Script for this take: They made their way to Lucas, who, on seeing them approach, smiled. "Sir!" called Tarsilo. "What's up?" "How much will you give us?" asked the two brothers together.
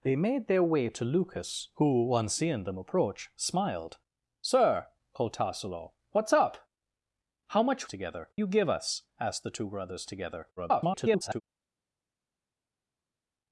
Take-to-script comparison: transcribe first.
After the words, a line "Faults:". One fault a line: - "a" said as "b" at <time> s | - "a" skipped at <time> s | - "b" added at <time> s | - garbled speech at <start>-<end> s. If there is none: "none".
They made their way to Lucas, who, on seeing them approach, smiled. "Sir!" called Tarsilo. "What's up?" "How much together you give us?" asked the two brothers together. [garbled]
Faults:
- "will" said as "together" at 7.9 s
- garbled speech at 10.6-11.4 s